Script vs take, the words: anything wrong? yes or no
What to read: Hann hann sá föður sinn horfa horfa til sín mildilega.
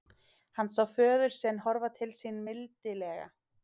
yes